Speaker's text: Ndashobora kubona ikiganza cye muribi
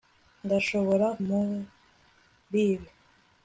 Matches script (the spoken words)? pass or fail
fail